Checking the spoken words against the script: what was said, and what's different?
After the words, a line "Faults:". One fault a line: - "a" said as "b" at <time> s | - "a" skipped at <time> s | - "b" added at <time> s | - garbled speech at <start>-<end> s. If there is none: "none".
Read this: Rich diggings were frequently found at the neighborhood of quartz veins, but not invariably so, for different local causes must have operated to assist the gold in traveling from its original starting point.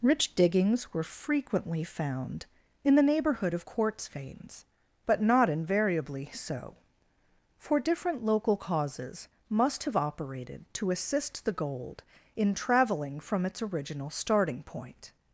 Rich diggings were frequently found in the neighborhood of quartz veins, but not invariably so, for different local causes must have operated to assist the gold in traveling from its original starting point.
Faults:
- "at" said as "in" at 2.8 s